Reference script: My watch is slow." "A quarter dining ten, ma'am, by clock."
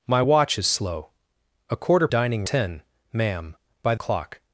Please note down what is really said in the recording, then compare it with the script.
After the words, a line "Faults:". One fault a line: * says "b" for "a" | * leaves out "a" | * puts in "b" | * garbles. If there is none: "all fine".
My watch is slow." "A quarter dining ten, ma'am, by clock."
Faults:
all fine